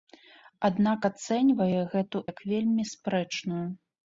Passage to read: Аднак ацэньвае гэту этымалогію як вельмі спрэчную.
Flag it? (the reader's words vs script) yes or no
yes